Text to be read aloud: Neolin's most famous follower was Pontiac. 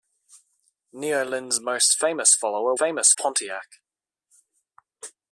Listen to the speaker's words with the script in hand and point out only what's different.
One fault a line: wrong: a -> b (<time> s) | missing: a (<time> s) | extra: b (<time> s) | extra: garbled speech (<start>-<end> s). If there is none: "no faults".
wrong: was -> famous (2.8 s)